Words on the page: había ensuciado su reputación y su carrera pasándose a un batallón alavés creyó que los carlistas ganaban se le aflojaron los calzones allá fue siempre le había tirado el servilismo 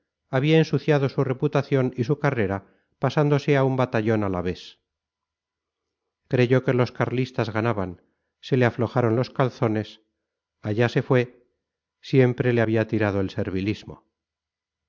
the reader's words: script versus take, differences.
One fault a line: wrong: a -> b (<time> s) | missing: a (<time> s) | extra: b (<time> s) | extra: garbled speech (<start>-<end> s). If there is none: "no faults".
extra: se (10.9 s)